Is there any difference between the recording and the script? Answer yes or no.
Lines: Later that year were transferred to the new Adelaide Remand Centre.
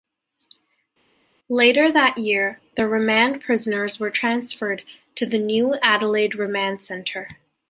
yes